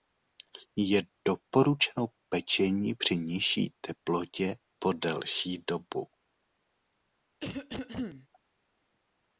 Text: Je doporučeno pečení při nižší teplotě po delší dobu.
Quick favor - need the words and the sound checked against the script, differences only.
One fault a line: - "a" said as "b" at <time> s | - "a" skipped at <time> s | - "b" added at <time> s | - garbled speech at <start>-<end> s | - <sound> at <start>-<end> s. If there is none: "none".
- cough at 7.4-8.3 s